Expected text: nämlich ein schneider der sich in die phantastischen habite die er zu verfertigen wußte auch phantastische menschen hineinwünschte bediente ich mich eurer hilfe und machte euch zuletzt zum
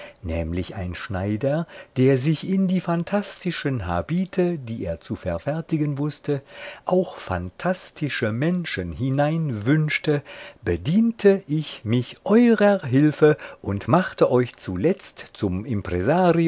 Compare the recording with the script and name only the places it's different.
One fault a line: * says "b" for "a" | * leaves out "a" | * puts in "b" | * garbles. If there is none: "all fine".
all fine